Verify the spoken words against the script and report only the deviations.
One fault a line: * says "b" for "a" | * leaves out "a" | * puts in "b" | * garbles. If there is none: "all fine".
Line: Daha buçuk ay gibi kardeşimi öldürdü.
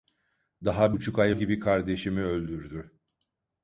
all fine